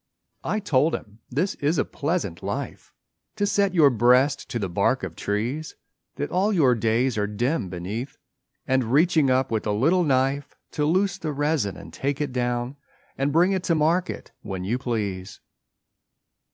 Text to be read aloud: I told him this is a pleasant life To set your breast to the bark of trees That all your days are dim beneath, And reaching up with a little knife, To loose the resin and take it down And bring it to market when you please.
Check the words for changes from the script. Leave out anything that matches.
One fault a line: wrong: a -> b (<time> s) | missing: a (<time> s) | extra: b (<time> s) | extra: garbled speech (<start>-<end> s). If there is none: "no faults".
no faults